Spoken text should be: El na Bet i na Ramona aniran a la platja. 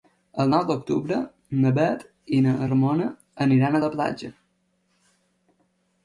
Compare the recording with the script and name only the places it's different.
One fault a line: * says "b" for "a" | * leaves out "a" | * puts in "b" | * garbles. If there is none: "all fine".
* puts in "nou d'octubre"